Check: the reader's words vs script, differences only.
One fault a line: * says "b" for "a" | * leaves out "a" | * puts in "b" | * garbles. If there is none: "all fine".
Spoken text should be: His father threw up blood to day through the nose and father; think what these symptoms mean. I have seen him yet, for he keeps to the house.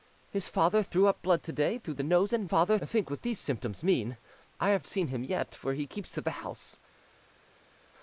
all fine